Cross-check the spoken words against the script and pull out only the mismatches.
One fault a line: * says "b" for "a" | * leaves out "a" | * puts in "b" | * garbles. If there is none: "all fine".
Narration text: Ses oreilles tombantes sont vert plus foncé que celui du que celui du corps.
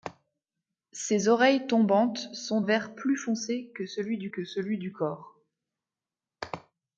all fine